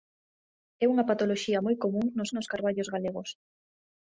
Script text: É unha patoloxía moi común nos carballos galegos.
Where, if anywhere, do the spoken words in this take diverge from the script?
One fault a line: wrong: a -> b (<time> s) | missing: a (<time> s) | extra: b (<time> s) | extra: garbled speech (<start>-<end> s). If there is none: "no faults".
extra: nos (2.3 s)